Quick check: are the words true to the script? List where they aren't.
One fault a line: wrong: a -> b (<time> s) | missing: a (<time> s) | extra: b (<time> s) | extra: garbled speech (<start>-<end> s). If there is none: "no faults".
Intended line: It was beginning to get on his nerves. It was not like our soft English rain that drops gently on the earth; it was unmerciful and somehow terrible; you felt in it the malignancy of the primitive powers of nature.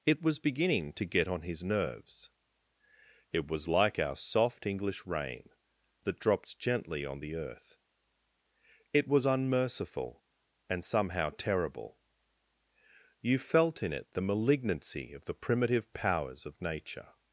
missing: not (3.7 s)